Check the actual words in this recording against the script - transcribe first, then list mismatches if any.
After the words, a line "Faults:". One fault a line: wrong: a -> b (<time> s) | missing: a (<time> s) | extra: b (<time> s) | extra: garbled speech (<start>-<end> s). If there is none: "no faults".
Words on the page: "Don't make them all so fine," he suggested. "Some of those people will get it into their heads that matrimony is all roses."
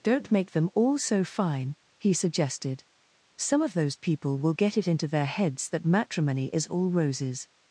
"Don't make them all so fine," he suggested. "Some of those people will get it into their heads that matrimony is all roses."
Faults:
no faults